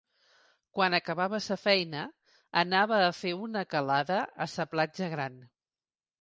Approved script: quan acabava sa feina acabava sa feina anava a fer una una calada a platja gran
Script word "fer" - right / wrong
right